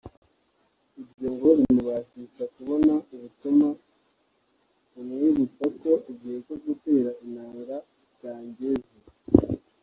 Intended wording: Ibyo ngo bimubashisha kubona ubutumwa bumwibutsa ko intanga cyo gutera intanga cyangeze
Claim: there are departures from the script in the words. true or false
true